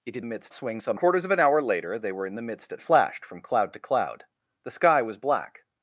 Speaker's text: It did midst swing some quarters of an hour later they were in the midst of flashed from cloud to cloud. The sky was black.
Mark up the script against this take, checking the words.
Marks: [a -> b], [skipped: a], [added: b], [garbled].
It did midst swing some quarters of an hour later they were in the midst of flashed from cloud to cloud. The sky was black.